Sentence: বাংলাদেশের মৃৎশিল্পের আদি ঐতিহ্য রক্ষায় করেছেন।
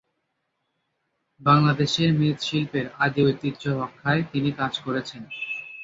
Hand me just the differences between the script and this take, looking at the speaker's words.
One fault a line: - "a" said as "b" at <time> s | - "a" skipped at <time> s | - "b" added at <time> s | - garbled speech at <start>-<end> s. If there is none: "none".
- "তিনি কাজ" added at 4.3 s